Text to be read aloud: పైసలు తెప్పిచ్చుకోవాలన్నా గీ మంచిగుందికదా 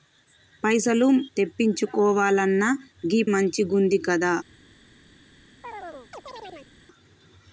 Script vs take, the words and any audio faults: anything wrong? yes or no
yes